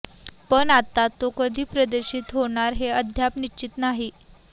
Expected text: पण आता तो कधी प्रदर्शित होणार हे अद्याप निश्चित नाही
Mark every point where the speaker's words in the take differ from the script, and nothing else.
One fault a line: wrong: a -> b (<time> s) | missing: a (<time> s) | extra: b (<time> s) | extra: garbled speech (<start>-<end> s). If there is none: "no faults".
no faults